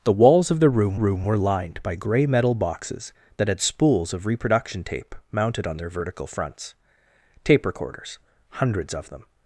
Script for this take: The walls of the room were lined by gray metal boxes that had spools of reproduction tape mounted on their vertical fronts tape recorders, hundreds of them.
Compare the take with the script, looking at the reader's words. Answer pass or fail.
fail